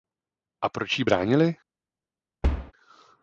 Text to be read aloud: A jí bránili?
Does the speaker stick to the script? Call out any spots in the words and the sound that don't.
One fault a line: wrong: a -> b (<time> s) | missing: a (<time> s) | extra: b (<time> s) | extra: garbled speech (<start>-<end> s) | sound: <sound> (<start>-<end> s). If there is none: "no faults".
extra: proč (0.7 s)
sound: thud (2.4-2.7 s)